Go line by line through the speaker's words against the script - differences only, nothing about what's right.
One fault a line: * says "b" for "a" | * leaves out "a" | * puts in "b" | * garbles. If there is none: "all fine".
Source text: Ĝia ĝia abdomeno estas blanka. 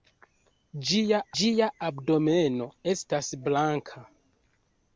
all fine